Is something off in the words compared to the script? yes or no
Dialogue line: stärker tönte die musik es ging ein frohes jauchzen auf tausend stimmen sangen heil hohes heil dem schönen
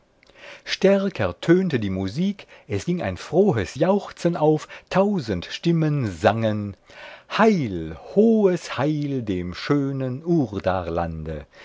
no